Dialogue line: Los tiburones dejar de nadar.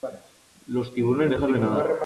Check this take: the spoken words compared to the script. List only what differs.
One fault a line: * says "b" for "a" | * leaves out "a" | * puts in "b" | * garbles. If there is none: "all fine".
all fine